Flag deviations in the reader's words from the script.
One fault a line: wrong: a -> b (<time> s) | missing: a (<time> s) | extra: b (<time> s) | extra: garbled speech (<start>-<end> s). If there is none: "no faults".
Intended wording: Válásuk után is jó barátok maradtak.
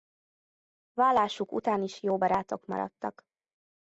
no faults